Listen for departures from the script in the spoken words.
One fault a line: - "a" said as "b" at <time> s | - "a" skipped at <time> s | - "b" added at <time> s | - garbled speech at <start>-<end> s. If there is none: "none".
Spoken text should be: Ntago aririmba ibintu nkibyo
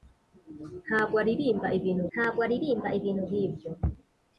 - "ntago aririmba ibintu" added at 2.1 s